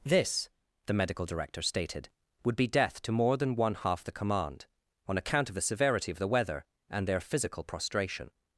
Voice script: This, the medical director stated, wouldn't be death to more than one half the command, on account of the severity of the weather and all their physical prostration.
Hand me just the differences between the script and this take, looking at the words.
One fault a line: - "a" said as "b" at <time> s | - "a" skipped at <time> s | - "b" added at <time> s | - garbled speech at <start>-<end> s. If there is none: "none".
- "wouldn't" said as "would" at 2.4 s
- "all" skipped at 7.1 s